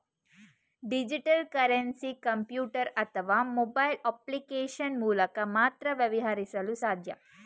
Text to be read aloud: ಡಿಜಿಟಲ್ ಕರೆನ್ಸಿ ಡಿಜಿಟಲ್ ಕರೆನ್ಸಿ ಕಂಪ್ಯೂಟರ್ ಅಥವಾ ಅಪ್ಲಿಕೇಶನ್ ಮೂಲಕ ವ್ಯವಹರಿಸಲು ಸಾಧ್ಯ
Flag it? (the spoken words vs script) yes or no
yes